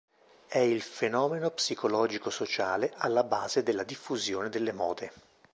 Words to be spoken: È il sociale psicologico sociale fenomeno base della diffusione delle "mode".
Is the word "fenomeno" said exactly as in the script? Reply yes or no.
no